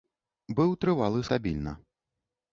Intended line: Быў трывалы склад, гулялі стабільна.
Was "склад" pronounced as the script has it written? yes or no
no